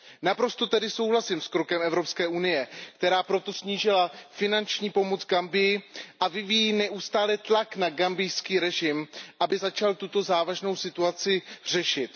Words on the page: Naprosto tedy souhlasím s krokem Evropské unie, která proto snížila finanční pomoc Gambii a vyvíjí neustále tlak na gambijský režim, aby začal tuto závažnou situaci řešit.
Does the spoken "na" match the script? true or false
true